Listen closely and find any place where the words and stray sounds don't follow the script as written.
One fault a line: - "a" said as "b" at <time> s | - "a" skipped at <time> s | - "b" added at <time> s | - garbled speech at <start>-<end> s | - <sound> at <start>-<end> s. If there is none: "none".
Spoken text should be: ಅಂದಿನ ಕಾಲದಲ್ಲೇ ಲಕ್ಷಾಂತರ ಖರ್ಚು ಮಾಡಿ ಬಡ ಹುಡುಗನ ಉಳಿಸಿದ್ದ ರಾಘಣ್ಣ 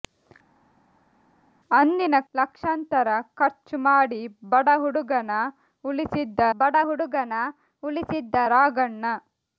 - "ಕಾಲದಲ್ಲೇ" skipped at 2.2 s
- "ಬಡ ಹುಡುಗನ ಉಳಿಸಿದ್ದ" added at 6.6 s